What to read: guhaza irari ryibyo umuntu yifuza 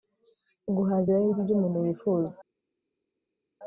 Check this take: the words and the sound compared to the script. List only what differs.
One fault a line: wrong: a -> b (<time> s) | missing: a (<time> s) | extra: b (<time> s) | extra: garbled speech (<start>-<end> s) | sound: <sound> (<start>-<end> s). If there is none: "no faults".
no faults